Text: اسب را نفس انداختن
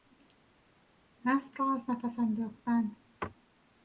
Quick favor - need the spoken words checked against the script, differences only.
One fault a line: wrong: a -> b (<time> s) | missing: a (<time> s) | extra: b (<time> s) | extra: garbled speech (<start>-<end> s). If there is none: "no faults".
extra: از (1.7 s)